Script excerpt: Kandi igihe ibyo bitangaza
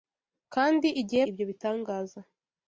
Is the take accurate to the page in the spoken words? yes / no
yes